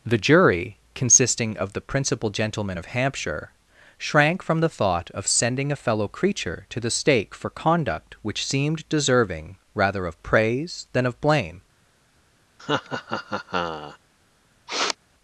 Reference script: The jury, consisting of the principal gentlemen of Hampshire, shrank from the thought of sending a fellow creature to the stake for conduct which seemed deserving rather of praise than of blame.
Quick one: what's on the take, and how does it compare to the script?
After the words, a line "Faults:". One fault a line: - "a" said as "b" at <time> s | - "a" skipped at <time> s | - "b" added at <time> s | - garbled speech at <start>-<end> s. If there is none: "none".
The jury, consisting of the principal gentlemen of Hampshire, shrank from the thought of sending a fellow creature to the stake for conduct which seemed deserving rather of praise than of blame.
Faults:
none